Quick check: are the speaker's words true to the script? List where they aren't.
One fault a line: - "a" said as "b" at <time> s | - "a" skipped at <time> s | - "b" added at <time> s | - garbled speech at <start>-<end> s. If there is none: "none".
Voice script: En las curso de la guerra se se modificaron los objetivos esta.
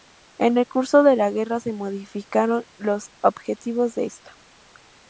- "las" said as "el" at 0.6 s
- "se" skipped at 1.7 s
- "de" added at 4.0 s